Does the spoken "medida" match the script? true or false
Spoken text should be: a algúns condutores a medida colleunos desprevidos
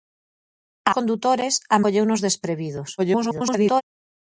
false